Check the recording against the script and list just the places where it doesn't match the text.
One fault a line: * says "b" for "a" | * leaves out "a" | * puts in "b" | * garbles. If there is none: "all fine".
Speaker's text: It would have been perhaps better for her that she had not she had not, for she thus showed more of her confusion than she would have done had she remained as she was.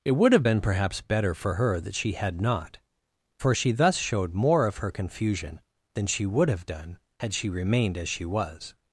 * leaves out "she had not"